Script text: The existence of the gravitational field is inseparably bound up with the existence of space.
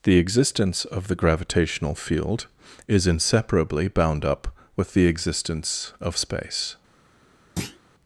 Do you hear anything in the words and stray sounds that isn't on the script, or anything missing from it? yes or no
yes